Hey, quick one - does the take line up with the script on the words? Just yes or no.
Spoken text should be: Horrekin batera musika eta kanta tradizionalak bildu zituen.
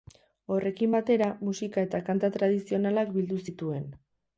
yes